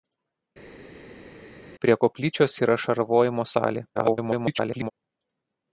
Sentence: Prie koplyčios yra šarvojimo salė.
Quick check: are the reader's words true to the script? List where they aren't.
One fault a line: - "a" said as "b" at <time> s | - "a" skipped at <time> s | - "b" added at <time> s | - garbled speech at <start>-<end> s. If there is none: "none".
- garbled speech at 3.9-4.9 s